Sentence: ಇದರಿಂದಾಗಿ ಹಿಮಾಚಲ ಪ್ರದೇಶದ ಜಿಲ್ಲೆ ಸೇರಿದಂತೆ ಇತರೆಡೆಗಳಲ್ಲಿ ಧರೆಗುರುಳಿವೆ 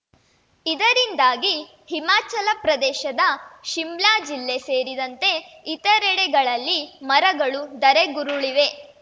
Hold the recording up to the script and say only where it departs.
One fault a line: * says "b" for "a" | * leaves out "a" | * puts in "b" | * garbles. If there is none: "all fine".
* puts in "ಶಿಮ್ಲಾ"
* puts in "ಮರಗಳು"